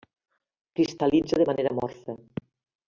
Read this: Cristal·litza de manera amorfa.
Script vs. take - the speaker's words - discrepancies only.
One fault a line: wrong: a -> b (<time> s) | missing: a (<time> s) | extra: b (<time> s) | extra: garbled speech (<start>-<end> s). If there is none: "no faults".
no faults